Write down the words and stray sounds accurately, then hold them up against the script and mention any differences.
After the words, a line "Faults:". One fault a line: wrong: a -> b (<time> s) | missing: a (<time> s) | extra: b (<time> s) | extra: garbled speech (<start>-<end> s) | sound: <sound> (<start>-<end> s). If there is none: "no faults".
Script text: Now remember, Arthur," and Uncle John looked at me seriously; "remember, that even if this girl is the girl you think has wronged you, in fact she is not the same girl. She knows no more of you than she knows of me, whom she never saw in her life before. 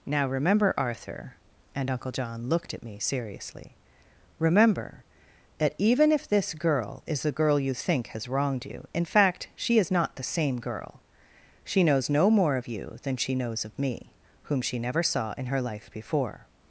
Now remember, Arthur," and Uncle John looked at me seriously; "remember, that even if this girl is the girl you think has wronged you, in fact she is not the same girl. She knows no more of you than she knows of me, whom she never saw in her life before.
Faults:
no faults